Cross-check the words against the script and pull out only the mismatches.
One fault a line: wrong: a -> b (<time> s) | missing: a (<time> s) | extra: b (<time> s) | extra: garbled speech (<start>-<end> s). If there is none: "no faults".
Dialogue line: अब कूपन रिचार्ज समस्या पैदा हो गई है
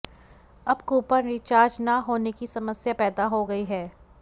extra: न होने की (1.8 s)